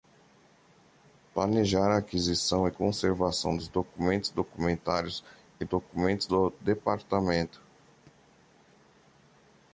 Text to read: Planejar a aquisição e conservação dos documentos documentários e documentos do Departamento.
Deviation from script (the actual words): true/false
false